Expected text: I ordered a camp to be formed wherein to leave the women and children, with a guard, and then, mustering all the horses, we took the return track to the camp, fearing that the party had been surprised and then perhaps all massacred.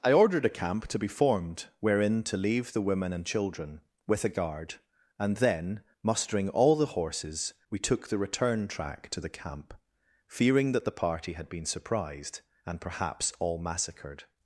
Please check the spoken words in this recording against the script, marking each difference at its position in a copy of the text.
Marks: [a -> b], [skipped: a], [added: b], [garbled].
I ordered a camp to be formed wherein to leave the women and children, with a guard, and then, mustering all the horses, we took the return track to the camp, fearing that the party had been surprised and [skipped: then] perhaps all massacred.